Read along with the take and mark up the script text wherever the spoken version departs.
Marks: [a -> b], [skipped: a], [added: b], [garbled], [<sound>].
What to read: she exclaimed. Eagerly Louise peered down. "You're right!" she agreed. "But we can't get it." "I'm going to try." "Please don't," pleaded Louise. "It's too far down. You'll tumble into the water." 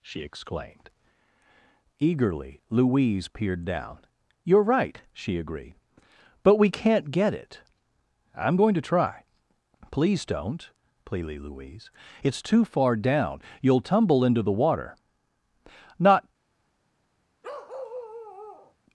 she exclaimed. Eagerly Louise peered down. "You're right!" she agreed. "But we can't get it." "I'm going to try." "Please don't," pleaded Louise. "It's too far down. You'll tumble into the water." [added: Not] [bark]